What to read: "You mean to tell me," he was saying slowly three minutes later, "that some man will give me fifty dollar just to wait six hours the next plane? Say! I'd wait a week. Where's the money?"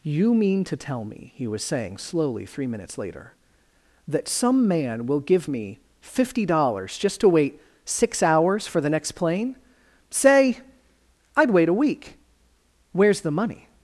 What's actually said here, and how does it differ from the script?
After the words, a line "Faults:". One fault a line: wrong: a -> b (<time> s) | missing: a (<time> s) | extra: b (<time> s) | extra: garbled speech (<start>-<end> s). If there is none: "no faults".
"You mean to tell me," he was saying slowly three minutes later, "that some man will give me fifty dollars just to wait six hours for the next plane? Say! I'd wait a week. Where's the money?"
Faults:
wrong: dollar -> dollars (6.5 s)
extra: for (8.7 s)